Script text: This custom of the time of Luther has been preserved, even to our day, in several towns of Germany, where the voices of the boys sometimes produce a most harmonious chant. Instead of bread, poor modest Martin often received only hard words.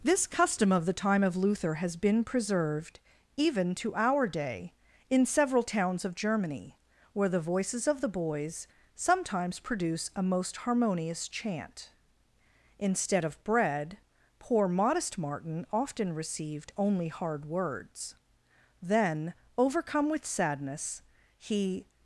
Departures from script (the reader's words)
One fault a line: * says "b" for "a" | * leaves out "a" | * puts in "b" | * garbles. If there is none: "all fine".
* puts in "Then overcome with sadness he"